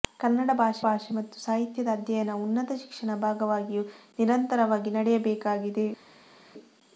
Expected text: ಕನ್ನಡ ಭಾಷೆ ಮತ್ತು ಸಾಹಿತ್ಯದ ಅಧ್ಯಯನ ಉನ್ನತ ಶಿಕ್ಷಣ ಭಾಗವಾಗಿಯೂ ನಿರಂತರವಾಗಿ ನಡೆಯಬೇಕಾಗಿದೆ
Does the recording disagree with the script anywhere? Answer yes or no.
yes